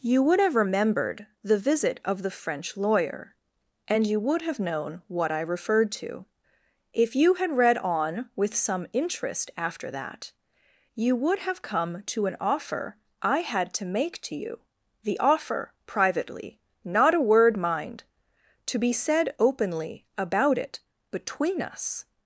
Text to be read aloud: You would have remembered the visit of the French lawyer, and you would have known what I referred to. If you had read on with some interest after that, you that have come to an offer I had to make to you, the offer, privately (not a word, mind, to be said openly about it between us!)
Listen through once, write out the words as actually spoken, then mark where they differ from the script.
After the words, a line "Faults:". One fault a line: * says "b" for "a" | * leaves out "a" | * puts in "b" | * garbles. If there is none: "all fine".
You would have remembered the visit of the French lawyer, and you would have known what I referred to. If you had read on with some interest after that, you would have come to an offer I had to make to you, the offer, privately (not a word, mind, to be said openly about it between us!)
Faults:
* says "would" for "that"